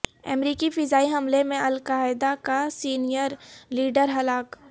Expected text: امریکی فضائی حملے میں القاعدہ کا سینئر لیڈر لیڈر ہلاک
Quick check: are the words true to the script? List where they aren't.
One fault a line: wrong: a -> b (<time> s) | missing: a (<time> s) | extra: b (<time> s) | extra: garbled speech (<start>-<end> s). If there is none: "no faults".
missing: لیڈر (4.1 s)